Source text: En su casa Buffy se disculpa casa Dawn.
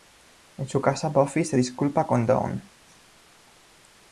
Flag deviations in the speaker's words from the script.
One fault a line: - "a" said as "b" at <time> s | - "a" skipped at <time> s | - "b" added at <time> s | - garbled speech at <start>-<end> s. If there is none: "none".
- "casa" said as "con" at 2.1 s